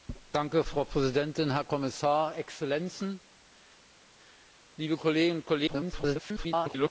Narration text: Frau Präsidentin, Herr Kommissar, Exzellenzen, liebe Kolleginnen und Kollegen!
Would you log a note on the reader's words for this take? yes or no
yes